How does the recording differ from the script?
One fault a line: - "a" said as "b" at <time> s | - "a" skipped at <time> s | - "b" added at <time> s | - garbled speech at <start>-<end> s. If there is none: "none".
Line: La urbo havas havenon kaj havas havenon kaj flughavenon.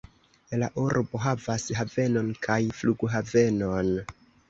- "havas havenon kaj" skipped at 2.6 s